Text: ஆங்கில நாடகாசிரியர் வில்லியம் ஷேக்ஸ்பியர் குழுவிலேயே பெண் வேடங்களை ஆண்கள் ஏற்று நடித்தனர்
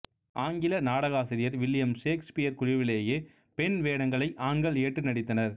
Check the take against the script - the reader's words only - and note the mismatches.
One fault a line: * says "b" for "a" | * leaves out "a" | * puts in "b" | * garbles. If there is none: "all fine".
all fine